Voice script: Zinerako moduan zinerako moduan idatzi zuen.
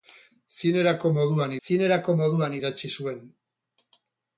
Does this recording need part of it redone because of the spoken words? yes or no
no